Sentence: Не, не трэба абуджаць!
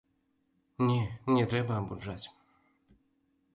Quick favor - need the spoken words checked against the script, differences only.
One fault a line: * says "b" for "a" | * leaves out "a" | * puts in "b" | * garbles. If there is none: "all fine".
all fine